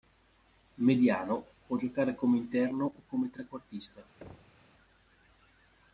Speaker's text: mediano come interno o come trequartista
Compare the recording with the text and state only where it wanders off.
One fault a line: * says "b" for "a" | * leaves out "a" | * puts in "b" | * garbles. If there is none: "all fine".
* puts in "può giocare"